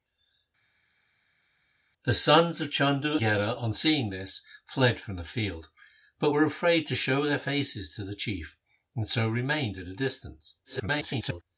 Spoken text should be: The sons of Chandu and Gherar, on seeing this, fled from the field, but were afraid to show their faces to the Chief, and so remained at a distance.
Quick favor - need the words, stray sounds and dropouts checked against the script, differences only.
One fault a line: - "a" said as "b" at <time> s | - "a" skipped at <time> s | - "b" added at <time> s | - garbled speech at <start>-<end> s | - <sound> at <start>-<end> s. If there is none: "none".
- "and" skipped at 3.2 s
- garbled speech at 10.6-11.4 s